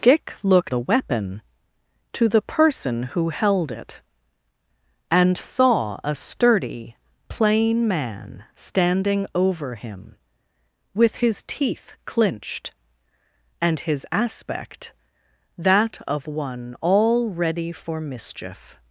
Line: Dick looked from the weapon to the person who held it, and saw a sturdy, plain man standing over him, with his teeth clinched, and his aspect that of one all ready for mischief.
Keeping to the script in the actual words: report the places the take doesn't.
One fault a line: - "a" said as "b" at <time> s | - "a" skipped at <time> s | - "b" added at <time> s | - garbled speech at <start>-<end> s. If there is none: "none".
- "from" skipped at 0.7 s